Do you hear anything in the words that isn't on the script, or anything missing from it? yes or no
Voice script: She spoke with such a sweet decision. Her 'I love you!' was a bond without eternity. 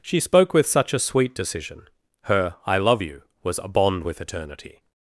yes